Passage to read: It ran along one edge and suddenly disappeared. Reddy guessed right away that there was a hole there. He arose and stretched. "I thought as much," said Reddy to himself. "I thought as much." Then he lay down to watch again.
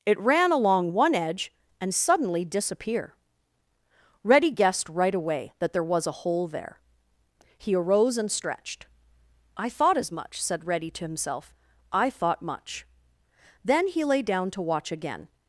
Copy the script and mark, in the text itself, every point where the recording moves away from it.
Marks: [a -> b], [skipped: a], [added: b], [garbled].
It ran along one edge and suddenly [disappeared. -> disappear] Reddy guessed right away that there was a hole there. He arose and stretched. "I thought as much," said Reddy to himself. "I thought [skipped: as] much." Then he lay down to watch again.